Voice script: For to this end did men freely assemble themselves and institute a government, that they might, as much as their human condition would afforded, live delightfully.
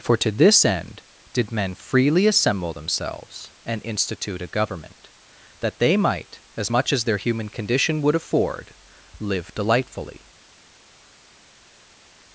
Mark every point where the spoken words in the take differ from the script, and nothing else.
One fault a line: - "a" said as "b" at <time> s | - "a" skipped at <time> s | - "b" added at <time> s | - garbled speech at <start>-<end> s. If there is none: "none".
- "afforded" said as "afford" at 8.1 s